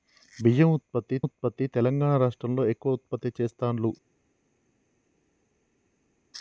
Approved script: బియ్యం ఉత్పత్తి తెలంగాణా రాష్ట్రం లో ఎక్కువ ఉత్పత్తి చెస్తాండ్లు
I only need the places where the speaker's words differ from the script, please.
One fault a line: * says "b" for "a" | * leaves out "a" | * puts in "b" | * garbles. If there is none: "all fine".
* puts in "ఉత్పత్తి"